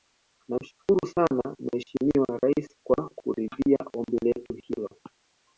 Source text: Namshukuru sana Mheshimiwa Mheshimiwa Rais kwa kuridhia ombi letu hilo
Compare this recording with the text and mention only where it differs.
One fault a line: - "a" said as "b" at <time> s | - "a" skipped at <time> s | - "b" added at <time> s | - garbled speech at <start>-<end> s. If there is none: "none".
- "Mheshimiwa" skipped at 2.4 s